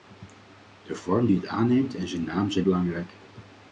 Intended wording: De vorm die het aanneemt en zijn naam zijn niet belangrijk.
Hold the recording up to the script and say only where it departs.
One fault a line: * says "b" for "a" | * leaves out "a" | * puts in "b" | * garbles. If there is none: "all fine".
* leaves out "niet"